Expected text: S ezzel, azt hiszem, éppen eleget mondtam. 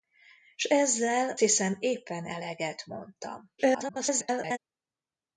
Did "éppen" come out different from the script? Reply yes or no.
no